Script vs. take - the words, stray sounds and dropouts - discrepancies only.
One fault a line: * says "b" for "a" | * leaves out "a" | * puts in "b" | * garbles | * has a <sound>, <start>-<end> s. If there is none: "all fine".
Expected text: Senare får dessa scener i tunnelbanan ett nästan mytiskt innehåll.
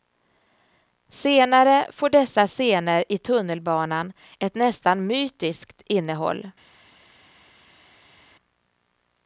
all fine